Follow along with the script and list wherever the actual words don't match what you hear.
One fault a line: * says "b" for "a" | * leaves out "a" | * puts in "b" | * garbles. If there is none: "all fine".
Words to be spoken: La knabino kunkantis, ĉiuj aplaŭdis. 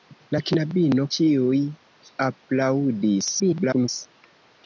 * leaves out "kunkantis"
* garbles